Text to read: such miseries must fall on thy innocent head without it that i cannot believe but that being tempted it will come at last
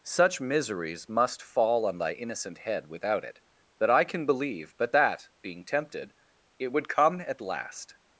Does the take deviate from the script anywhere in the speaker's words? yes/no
yes